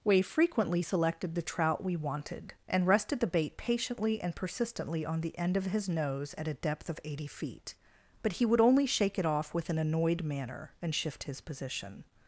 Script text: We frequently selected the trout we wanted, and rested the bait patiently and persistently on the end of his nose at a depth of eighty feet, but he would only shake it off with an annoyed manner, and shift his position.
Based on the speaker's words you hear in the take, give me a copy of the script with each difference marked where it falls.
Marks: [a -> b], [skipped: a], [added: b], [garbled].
We frequently selected the trout we wanted, and rested the bait patiently and persistently on the end of his nose at a depth of eighty feet, but he would only shake it off with an annoyed manner, and shift his position.